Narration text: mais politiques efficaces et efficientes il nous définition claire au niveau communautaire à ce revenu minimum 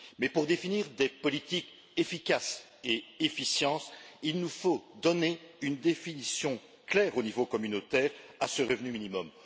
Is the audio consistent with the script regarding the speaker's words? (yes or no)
no